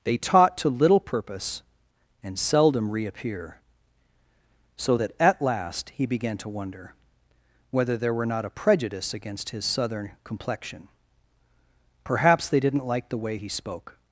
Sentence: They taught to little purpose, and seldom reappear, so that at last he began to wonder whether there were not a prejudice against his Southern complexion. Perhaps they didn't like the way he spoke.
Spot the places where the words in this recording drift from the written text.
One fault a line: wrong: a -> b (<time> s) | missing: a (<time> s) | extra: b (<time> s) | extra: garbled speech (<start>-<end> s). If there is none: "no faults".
no faults